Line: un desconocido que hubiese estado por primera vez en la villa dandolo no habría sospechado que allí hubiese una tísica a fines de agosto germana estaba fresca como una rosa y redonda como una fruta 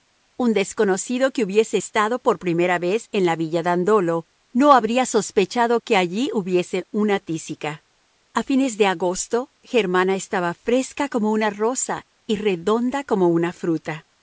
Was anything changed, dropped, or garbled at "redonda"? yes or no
no